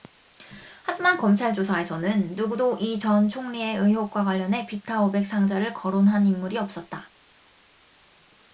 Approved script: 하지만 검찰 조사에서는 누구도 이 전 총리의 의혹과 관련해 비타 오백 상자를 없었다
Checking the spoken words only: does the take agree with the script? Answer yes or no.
no